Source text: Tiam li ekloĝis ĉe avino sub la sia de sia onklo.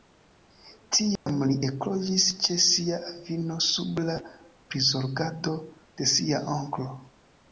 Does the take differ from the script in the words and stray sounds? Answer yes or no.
yes